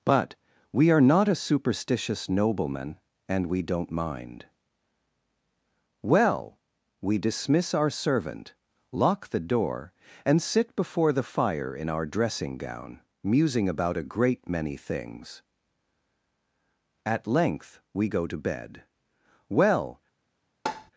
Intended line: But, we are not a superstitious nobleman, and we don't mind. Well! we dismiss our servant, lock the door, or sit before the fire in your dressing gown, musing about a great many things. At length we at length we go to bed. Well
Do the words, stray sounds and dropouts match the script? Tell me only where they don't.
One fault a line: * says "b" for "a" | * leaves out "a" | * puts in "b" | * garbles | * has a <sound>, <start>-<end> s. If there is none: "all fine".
* says "and" for "or"
* says "our" for "your"
* leaves out "at length we"
* has a tap, 20.7-20.9 s